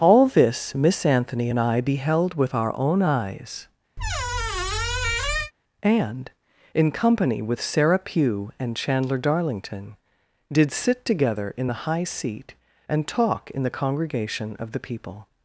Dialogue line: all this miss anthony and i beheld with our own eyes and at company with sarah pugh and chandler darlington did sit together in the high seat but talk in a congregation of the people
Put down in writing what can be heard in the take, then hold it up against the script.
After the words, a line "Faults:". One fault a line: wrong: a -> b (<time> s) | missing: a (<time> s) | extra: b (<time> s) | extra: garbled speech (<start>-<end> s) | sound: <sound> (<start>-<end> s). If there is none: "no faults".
all this miss anthony and i beheld with our own eyes and in company with sarah pugh and chandler darlington did sit together in the high seat and talk in the congregation of the people
Faults:
sound: squeak (4.0-5.5 s)
wrong: at -> in (6.7 s)
wrong: but -> and (12.9 s)
wrong: a -> the (13.6 s)